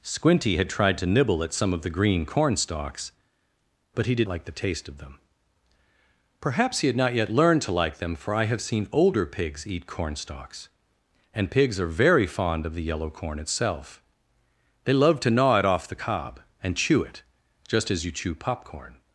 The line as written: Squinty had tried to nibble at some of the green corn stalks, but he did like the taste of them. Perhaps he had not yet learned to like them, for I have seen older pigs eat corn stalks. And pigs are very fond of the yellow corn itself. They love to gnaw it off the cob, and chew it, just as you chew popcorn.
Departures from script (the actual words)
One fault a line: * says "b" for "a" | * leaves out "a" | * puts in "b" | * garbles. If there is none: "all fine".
all fine